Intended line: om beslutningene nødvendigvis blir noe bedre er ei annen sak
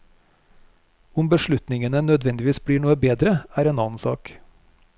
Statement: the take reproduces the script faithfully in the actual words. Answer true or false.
false